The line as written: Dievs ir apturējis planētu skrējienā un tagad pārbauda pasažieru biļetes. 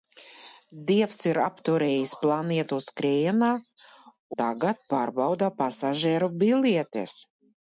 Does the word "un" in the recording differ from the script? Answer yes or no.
yes